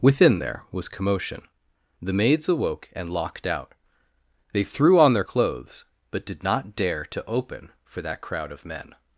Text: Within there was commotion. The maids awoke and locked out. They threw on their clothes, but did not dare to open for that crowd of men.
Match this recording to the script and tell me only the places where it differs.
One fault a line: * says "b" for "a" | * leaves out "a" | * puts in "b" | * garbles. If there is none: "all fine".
all fine